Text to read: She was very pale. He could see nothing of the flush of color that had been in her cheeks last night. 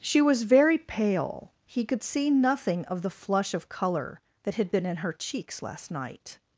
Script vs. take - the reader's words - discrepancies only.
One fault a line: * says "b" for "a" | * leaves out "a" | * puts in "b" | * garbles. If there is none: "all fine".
all fine